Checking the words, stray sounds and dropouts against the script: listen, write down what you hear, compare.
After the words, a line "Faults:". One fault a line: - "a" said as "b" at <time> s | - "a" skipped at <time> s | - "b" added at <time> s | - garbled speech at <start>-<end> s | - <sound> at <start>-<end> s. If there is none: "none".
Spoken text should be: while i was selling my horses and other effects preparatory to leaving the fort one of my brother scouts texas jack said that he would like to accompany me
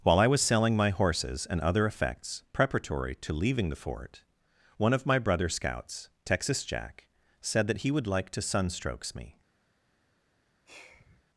while i was selling my horses and other effects preparatory to leaving the fort one of my brother scouts texas jack said that he would like to sunstrokes me
Faults:
- "accompany" said as "sunstrokes" at 8.4 s
- sigh at 10.7-11.2 s